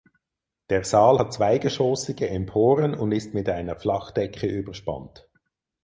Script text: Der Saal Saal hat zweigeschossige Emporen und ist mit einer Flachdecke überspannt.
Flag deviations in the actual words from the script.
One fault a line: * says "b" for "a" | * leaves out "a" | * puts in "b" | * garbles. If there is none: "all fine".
* leaves out "Saal"